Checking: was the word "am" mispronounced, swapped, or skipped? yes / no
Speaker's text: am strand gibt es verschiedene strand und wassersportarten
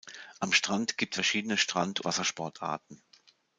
no